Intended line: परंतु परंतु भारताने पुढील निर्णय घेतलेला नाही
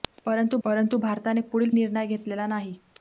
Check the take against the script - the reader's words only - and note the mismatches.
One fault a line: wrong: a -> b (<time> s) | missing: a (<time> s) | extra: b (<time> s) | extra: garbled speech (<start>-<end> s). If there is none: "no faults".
no faults